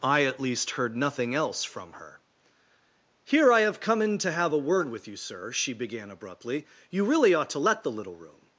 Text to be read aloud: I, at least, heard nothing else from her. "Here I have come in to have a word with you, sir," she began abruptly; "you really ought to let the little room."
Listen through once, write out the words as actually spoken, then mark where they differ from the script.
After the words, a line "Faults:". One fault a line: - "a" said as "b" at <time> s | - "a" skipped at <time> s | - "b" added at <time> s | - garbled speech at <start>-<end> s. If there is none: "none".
I, at least, heard nothing else from her. "Here I have come in to have a word with you, sir," she began abruptly; "you really ought to let the little room."
Faults:
none